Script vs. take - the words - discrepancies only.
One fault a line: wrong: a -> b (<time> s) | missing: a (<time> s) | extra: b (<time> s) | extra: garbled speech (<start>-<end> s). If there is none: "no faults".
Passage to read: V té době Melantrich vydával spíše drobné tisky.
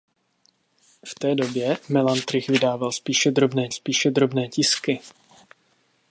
extra: spíše drobné (3.7 s)